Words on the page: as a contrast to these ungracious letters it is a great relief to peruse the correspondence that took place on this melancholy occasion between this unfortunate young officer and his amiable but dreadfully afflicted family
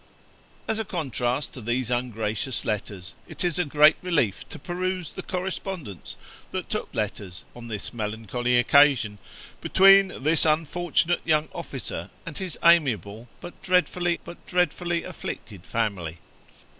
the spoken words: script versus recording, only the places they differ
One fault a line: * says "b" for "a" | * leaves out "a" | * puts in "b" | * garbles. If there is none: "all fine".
* says "letters" for "place"
* puts in "but dreadfully"